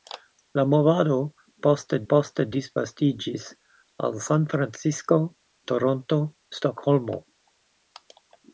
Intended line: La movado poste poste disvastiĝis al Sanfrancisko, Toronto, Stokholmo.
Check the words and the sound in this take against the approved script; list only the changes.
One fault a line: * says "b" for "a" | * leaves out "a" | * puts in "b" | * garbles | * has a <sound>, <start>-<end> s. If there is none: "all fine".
all fine